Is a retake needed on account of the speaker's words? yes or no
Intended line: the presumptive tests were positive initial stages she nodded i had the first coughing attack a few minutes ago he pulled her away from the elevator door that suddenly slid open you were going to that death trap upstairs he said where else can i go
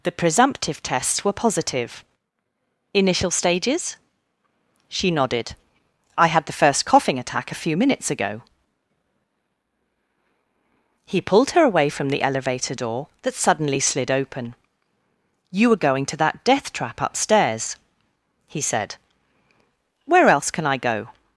no